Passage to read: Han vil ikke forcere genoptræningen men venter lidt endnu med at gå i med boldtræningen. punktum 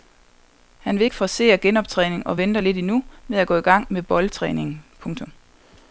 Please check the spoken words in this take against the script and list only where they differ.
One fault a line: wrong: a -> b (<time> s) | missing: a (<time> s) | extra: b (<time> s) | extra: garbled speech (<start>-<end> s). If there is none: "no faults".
wrong: men -> og (2.3 s)
extra: gang (3.6 s)